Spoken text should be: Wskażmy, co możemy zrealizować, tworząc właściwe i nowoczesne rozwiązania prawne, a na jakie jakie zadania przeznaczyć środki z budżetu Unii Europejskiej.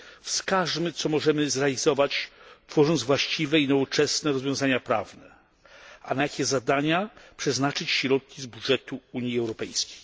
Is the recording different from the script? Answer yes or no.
yes